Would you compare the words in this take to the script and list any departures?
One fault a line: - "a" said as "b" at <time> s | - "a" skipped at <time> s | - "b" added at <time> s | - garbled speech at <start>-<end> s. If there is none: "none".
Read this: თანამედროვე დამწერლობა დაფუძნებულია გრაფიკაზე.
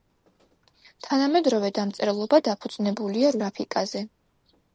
none